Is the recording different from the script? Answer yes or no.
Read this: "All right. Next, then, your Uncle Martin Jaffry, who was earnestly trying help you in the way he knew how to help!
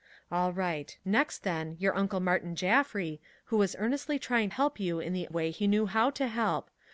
no